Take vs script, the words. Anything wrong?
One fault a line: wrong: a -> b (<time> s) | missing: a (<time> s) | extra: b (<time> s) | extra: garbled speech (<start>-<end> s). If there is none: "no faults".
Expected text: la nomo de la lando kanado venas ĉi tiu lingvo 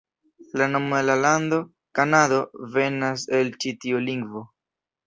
extra: el (3.4 s)